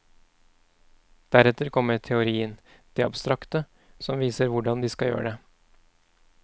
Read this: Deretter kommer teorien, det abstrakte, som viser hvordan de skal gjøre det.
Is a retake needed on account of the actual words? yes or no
no